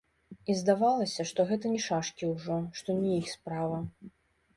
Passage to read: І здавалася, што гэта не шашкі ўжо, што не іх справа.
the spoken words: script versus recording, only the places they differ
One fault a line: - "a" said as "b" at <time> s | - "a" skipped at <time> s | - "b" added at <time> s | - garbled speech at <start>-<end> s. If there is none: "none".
none